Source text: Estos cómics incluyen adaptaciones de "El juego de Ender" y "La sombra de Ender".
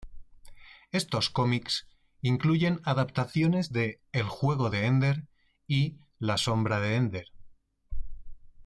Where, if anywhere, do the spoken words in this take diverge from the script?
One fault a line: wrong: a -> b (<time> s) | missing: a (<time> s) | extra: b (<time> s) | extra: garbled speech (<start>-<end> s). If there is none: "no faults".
no faults